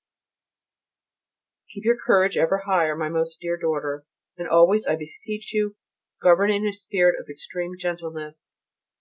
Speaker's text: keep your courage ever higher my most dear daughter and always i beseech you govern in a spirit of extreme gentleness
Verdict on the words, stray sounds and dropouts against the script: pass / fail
pass